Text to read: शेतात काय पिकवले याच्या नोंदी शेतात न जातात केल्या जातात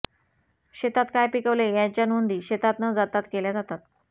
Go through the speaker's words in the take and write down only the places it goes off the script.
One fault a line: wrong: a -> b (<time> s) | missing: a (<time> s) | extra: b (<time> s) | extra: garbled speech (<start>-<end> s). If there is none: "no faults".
no faults